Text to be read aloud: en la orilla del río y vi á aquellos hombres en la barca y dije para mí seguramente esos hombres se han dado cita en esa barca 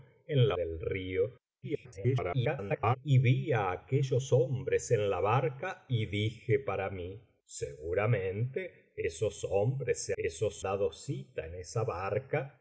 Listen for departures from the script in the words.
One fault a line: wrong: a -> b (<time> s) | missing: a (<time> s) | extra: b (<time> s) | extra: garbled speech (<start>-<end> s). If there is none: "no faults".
missing: orilla (0.6 s)
extra: garbled speech (1.6-3.0 s)
wrong: han -> esos (10.2 s)